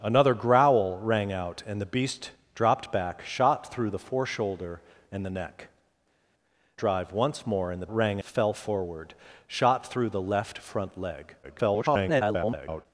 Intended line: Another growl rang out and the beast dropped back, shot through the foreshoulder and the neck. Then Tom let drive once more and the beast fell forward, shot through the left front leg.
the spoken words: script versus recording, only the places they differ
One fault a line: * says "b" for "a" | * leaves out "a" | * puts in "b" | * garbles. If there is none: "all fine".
* leaves out "Then Tom let"
* says "rang" for "beast"
* garbles